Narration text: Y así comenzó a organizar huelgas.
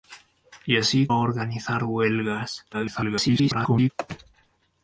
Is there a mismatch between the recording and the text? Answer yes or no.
yes